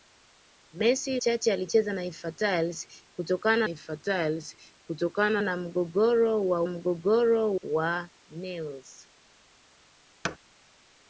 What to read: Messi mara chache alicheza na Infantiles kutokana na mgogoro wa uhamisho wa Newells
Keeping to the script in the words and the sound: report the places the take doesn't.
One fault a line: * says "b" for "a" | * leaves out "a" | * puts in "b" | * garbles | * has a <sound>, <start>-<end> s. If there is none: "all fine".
* leaves out "mara"
* puts in "Infantiles kutokana"
* says "mgogoro" for "uhamisho"
* has a thud, 10.2-10.4 s